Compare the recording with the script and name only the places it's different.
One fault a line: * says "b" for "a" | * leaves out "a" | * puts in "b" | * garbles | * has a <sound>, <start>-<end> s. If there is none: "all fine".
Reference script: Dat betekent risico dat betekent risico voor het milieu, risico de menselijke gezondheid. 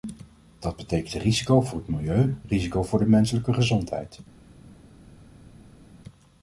* leaves out "dat betekent risico"
* puts in "voor"